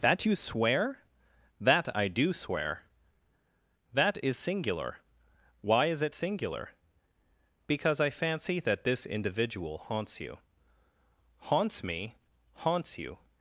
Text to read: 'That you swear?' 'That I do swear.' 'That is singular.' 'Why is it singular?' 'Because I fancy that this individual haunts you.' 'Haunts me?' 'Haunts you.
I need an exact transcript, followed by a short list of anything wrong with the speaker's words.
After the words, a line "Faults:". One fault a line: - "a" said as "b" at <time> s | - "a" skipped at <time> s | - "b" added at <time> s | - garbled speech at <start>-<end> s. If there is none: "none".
'That you swear?' 'That I do swear.' 'That is singular.' 'Why is it singular?' 'Because I fancy that this individual haunts you.' 'Haunts me?' 'Haunts you.
Faults:
none